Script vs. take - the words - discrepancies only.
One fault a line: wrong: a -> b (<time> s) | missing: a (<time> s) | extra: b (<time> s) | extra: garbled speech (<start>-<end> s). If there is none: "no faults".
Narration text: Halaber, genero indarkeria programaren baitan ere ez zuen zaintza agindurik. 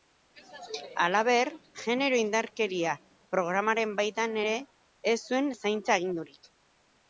no faults